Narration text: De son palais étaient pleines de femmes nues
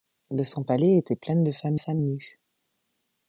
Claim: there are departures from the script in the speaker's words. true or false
true